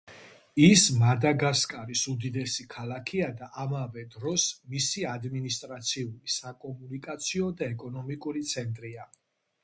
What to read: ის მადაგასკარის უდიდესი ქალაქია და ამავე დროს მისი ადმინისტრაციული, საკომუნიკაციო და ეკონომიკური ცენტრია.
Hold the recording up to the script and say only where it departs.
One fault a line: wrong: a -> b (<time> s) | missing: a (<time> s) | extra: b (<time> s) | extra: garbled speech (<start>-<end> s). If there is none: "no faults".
no faults